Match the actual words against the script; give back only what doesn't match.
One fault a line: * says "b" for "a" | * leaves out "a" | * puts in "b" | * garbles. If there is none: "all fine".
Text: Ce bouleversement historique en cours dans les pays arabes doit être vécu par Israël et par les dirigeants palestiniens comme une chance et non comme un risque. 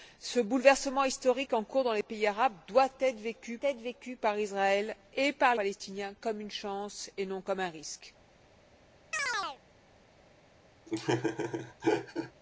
* puts in "être vécu"
* leaves out "les dirigeants"